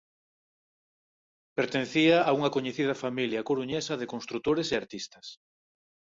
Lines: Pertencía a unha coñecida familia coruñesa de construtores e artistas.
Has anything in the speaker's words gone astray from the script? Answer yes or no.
no